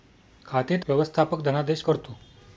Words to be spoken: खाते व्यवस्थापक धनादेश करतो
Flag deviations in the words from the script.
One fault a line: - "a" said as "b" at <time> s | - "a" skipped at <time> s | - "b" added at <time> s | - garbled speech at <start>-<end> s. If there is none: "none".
none